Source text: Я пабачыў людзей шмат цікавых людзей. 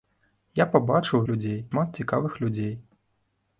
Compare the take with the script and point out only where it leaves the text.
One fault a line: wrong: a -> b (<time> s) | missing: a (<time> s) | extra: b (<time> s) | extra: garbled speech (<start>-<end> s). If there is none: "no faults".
no faults